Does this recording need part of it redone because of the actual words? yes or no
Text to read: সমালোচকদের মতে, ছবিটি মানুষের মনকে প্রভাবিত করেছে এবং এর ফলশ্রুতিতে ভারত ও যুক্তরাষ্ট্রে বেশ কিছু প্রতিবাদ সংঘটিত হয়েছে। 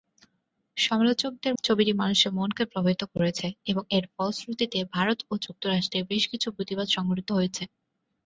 yes